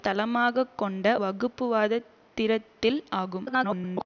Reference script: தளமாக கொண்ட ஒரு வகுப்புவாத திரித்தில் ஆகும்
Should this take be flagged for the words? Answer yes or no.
yes